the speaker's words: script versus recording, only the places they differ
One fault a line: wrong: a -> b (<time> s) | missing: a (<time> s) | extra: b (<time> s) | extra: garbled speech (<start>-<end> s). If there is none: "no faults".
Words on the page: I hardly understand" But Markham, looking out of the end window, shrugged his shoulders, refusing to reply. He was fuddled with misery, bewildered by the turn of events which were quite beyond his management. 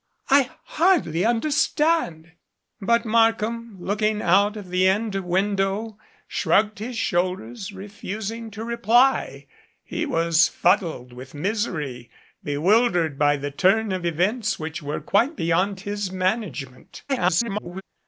extra: garbled speech (17.1-17.8 s)